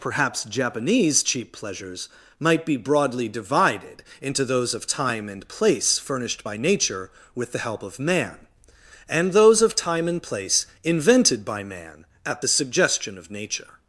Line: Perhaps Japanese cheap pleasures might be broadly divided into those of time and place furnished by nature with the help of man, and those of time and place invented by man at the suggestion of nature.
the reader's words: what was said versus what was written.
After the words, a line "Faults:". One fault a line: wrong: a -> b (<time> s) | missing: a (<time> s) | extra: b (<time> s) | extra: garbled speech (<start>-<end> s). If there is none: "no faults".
Perhaps Japanese cheap pleasures might be broadly divided into those of time and place furnished by nature with the help of man, and those of time and place invented by man at the suggestion of nature.
Faults:
no faults